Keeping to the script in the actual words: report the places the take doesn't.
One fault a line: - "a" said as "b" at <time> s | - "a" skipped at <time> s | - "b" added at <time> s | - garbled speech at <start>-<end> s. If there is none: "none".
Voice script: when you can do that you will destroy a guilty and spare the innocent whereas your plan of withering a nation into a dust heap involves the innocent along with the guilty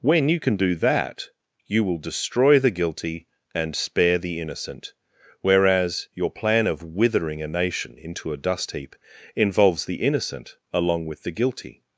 - "a" said as "the" at 2.6 s